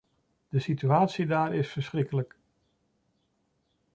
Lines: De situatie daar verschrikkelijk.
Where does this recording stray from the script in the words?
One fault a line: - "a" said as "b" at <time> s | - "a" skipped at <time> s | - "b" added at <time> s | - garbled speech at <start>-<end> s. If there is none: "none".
- "is" added at 1.5 s